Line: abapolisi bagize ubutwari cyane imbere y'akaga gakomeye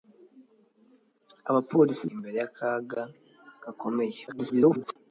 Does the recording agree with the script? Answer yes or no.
no